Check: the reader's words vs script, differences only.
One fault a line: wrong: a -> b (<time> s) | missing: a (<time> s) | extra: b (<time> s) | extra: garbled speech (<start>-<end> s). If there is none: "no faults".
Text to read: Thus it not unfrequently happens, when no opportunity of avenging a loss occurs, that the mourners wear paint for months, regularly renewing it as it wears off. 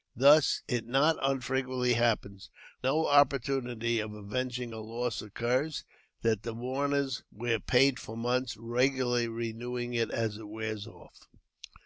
no faults